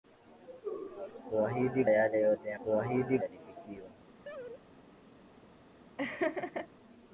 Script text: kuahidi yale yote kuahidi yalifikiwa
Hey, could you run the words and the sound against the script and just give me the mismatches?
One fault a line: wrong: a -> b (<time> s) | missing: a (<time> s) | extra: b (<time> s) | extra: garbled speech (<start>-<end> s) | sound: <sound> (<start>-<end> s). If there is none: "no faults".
sound: laugh (4.2-4.6 s)
sound: laugh (6.0-6.7 s)